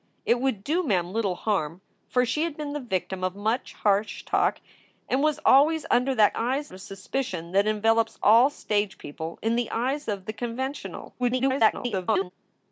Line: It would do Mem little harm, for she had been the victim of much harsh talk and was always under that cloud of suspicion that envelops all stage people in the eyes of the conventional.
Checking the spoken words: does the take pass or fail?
fail